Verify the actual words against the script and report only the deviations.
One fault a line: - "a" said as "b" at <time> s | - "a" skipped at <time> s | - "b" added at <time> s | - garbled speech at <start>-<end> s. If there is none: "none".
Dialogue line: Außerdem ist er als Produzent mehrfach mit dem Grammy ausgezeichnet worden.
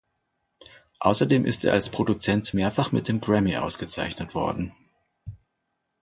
none